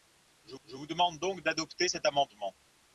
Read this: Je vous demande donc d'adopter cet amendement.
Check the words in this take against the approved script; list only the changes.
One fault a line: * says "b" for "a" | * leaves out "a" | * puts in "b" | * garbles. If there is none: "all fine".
* puts in "je"